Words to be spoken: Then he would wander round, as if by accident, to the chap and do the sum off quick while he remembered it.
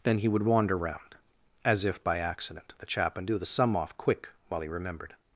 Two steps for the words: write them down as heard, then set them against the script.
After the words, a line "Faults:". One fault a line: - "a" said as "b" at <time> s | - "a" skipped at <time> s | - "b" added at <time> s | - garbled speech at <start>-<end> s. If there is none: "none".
Then he would wander round, as if by accident, the chap and do the sum off quick while he remembered.
Faults:
- "to" skipped at 2.7 s
- "it" skipped at 5.1 s